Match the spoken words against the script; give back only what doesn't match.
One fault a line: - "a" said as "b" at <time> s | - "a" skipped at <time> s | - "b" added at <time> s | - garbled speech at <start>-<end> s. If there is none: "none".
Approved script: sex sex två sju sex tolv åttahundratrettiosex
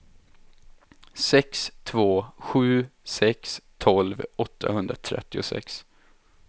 - "sex" skipped at 1.7 s